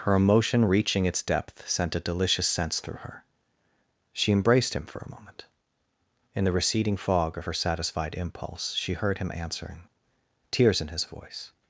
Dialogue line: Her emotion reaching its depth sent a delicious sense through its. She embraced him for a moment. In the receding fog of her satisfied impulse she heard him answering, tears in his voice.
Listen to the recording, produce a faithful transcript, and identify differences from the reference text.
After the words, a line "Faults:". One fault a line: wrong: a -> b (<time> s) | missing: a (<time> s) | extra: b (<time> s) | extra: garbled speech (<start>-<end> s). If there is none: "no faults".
Her emotion reaching its depth sent a delicious sense through her. She embraced him for a moment. In the receding fog of her satisfied impulse she heard him answering, tears in his voice.
Faults:
wrong: its -> her (3.0 s)